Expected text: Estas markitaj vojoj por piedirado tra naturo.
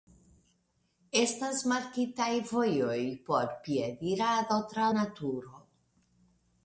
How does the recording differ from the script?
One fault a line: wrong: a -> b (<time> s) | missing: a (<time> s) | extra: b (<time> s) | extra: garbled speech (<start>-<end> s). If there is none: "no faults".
no faults